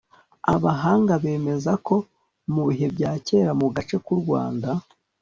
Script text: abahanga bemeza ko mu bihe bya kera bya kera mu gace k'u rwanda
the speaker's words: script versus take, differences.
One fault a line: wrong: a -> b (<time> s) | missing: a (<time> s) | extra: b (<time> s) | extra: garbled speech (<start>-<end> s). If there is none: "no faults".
missing: bya kera (3.5 s)